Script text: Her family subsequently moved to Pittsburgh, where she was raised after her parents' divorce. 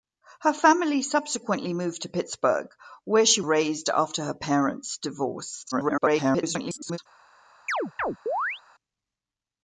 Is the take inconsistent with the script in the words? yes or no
yes